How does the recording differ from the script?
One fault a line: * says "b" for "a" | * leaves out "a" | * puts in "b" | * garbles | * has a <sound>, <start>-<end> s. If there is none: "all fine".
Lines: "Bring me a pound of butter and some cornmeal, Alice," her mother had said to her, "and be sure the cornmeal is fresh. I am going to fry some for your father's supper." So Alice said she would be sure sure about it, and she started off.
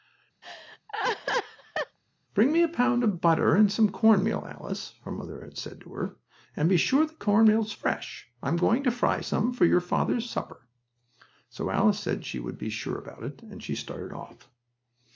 * has a laugh, 0.4-2.0 s
* leaves out "sure"